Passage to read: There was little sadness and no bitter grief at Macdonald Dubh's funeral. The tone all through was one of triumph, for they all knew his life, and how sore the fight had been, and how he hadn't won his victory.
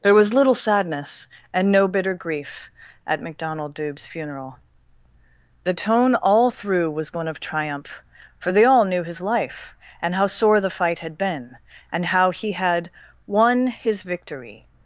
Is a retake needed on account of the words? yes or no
yes